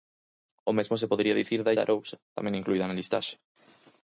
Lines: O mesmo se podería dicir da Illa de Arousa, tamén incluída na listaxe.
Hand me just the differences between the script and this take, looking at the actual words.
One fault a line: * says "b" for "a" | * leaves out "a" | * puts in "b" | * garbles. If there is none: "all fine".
* leaves out "Illa"